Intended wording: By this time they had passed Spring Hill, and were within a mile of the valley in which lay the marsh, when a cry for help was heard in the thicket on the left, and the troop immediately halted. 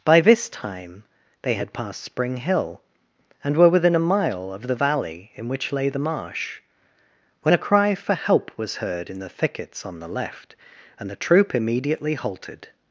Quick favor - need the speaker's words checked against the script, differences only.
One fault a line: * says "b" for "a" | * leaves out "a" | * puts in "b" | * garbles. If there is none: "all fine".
* says "thickets" for "thicket"